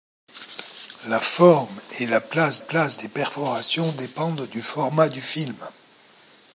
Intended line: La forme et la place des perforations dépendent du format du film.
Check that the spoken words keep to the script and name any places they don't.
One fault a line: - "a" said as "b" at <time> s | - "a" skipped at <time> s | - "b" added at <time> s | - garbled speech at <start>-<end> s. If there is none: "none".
- "place" added at 2.6 s